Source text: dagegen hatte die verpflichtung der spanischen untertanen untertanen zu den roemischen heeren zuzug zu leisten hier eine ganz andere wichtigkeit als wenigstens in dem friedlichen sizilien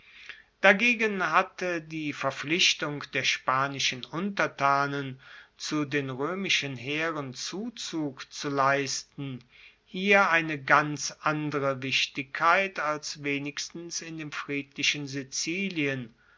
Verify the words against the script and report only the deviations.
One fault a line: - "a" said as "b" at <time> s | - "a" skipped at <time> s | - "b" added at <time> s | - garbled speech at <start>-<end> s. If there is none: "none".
- "untertanen" skipped at 5.2 s